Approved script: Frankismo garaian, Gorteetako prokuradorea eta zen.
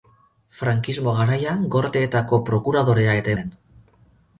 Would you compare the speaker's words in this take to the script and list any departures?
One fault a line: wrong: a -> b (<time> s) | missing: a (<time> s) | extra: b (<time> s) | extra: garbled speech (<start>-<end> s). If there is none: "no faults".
no faults